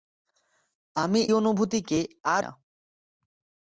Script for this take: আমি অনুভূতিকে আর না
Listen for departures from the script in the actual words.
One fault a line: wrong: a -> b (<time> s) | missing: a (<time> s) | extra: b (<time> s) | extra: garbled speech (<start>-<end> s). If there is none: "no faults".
no faults